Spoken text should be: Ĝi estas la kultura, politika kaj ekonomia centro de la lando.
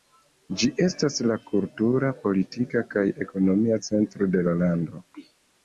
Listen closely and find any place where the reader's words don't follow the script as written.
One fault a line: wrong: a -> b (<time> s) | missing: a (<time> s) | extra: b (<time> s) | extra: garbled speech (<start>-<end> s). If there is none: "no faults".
no faults